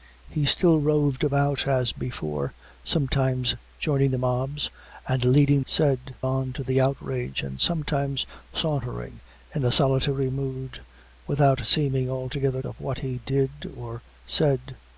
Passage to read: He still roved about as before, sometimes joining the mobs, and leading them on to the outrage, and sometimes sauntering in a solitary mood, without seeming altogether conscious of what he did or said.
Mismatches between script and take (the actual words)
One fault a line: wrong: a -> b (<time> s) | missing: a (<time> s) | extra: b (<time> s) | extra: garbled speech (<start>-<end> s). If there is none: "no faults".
wrong: them -> said (5.6 s)
missing: conscious (12.6 s)